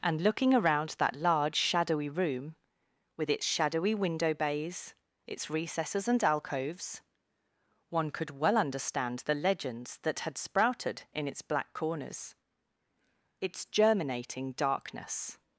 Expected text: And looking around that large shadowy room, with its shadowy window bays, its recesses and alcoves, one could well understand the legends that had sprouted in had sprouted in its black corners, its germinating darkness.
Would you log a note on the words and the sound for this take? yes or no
yes